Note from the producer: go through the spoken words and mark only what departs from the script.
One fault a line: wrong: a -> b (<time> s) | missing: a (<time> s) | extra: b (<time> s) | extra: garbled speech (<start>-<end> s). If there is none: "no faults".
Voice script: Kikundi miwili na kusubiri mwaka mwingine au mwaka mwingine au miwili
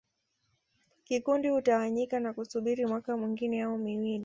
wrong: miwili -> hutawanyika (1.5 s)
missing: mwaka mwingine au (3.8 s)